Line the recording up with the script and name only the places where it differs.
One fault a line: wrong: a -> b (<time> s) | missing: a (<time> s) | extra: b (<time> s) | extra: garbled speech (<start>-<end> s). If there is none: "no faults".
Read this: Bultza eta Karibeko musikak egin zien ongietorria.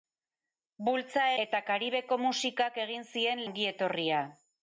no faults